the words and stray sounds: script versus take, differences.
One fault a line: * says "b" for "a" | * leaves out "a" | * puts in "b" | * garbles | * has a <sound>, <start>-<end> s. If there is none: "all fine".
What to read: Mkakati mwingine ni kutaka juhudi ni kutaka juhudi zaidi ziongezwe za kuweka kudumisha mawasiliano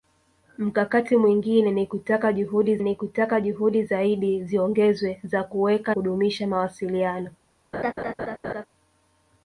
* has a laugh, 7.7-8.7 s